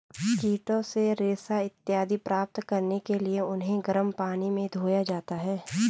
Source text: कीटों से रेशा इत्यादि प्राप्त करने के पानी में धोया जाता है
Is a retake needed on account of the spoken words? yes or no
yes